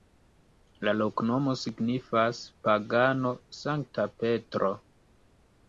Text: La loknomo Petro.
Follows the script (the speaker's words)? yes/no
no